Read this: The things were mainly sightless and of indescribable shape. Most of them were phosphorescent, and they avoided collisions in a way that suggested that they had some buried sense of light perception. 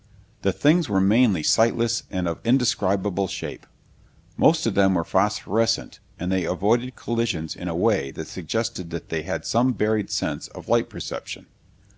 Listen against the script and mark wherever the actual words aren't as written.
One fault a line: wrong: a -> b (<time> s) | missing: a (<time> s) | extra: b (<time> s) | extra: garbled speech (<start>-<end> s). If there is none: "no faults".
no faults